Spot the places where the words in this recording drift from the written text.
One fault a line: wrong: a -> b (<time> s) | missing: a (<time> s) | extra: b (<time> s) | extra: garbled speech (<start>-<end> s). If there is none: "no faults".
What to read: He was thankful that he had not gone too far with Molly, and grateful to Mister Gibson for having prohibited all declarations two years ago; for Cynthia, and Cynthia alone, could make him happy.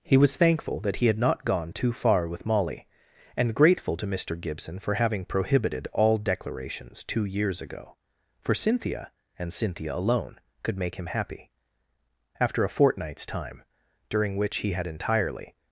extra: After a fortnight's time during which he had entirely (12.4 s)